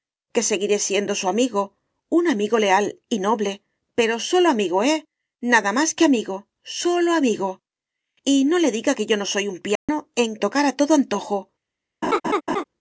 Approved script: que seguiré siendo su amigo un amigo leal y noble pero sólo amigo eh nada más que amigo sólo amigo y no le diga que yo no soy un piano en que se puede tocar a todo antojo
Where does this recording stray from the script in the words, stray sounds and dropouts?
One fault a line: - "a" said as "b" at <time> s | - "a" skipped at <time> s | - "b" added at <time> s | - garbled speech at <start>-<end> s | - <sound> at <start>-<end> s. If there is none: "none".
- dropout at 9.8-9.9 s
- "que se puede" skipped at 10.4 s
- laugh at 12.0-12.6 s